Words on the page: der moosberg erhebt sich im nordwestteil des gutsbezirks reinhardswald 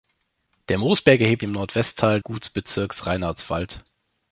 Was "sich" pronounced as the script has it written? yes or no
no